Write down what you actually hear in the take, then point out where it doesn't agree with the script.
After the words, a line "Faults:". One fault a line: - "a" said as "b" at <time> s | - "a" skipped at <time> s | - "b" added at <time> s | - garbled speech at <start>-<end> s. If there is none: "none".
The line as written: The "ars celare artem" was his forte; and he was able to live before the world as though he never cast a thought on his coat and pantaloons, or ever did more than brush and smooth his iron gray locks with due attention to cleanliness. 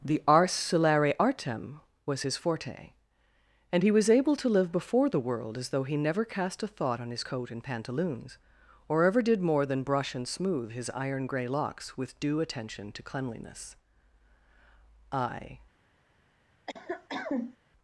The "ars celare artem" was his forte; and he was able to live before the world as though he never cast a thought on his coat and pantaloons, or ever did more than brush and smooth his iron gray locks with due attention to cleanliness. I
Faults:
- "I" added at 15.1 s